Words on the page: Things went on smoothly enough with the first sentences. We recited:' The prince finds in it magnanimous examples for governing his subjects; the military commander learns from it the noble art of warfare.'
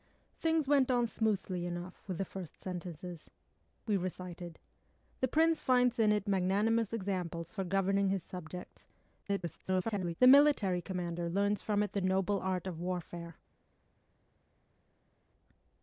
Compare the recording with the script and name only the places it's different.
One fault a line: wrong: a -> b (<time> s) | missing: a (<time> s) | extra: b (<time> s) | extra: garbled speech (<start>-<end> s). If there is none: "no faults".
extra: garbled speech (9.2-10.1 s)